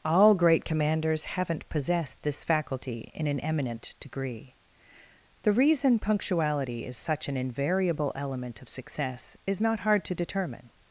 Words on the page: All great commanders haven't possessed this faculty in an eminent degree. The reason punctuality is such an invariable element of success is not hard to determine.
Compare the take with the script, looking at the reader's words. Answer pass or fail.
pass